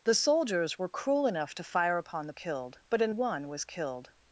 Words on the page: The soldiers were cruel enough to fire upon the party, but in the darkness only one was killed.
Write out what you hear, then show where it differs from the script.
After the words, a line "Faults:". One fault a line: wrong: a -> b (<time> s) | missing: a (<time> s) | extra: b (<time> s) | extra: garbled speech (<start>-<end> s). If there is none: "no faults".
The soldiers were cruel enough to fire upon the killed, but in one was killed.
Faults:
wrong: party -> killed (2.3 s)
missing: the darkness only (3.1 s)